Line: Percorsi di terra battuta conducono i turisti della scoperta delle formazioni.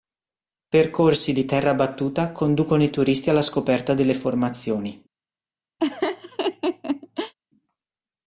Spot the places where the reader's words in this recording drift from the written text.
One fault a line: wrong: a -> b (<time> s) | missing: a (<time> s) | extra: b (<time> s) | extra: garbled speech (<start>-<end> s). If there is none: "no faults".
wrong: della -> alla (3.3 s)